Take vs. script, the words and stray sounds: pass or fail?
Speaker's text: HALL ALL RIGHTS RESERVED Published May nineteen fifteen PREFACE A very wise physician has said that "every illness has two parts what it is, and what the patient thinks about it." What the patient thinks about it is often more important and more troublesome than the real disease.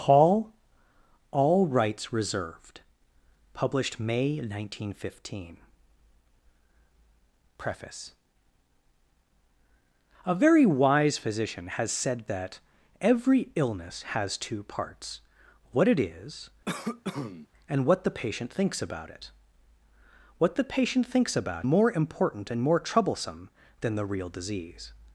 fail